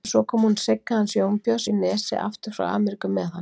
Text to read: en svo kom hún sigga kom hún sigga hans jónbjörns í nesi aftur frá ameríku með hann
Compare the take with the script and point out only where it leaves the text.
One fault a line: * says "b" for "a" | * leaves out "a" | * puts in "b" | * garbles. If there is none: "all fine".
* leaves out "kom hún sigga"